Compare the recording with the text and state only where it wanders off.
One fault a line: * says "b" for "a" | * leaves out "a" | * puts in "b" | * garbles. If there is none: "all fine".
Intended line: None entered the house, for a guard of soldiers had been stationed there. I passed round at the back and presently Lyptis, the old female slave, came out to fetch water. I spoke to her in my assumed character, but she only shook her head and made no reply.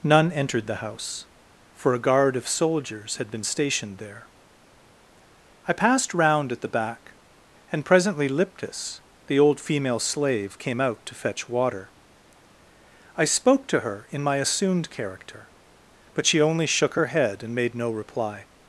all fine